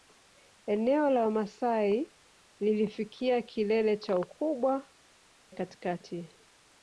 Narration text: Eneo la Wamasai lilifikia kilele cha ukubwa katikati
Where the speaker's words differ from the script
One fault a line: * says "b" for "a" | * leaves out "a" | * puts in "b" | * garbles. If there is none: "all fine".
all fine